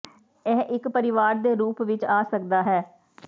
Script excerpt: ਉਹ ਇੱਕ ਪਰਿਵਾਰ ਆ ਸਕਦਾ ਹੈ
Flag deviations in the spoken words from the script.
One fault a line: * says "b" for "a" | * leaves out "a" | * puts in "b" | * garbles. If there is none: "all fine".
* says "ਇਹ" for "ਉਹ"
* puts in "ਦੇ ਰੂਪ ਵਿੱਚ"